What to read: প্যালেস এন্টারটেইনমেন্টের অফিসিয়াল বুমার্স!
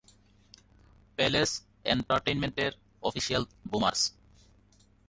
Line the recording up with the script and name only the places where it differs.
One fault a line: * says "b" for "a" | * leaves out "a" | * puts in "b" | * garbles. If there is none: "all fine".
all fine